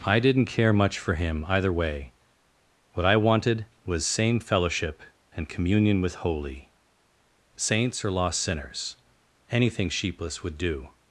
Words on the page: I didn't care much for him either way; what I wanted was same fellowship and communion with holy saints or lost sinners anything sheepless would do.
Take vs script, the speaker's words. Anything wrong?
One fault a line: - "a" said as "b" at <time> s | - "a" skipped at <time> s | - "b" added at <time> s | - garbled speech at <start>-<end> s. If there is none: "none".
none